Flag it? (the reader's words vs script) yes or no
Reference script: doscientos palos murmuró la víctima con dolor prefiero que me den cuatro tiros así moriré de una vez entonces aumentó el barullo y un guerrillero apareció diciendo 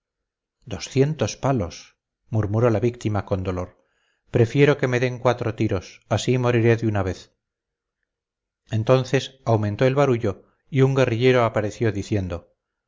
no